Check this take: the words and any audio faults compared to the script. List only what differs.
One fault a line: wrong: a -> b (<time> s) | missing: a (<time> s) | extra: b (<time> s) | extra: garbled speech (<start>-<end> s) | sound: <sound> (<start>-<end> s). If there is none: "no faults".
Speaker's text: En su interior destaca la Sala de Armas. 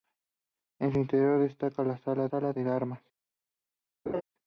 extra: Sala (2.3 s)
sound: laugh (4.1-4.2 s)